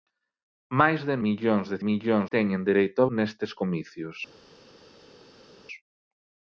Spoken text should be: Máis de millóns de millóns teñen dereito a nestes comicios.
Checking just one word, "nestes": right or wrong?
right